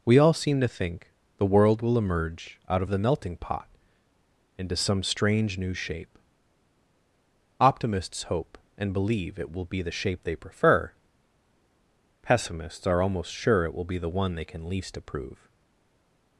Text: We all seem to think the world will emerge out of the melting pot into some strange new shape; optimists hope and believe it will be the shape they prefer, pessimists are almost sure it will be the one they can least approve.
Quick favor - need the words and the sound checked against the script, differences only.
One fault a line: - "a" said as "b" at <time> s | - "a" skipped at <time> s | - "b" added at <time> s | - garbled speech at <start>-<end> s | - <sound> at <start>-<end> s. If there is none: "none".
none